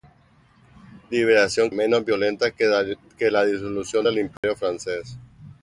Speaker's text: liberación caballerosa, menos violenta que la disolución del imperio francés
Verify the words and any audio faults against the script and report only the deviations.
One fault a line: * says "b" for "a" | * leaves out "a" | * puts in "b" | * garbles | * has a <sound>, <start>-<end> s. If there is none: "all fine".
* leaves out "caballerosa"
* has a dropout, 4.4-4.4 s